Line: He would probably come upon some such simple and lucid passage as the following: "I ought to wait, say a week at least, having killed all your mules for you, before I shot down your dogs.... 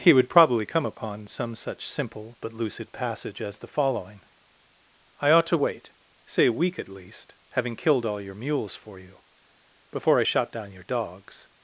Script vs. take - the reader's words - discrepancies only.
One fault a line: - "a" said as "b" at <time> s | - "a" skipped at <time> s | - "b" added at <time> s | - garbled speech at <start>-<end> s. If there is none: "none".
- "and" said as "but" at 2.4 s